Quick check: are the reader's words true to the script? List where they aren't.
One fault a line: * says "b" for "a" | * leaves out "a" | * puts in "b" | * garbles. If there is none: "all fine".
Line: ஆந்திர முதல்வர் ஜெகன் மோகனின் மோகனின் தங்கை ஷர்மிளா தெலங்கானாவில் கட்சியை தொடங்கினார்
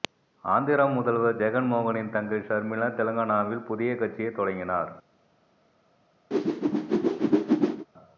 * leaves out "மோகனின்"
* puts in "புதிய"